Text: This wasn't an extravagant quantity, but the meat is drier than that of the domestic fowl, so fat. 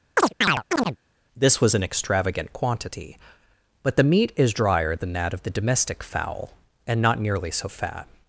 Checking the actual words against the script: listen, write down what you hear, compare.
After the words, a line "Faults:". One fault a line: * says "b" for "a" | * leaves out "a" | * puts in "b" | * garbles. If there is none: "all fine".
This was an extravagant quantity, but the meat is drier than that of the domestic fowl, and not nearly so fat.
Faults:
* says "was" for "wasn't"
* puts in "and not nearly"